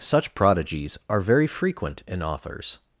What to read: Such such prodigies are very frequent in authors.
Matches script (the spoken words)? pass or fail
fail